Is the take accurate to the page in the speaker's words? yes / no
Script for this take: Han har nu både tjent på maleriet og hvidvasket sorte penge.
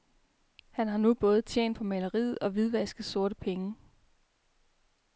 yes